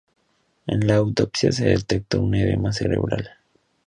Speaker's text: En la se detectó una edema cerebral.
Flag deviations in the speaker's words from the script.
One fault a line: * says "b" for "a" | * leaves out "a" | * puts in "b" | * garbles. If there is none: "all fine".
* puts in "autopsia"
* says "un" for "una"